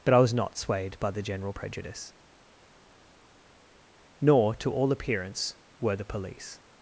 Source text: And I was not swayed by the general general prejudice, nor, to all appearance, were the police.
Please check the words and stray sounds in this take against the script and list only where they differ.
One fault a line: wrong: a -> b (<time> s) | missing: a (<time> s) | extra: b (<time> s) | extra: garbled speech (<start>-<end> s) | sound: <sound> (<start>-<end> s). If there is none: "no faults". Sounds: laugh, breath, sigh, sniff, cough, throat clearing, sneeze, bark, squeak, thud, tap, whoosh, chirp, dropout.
wrong: And -> But (0.0 s)
missing: general (1.5 s)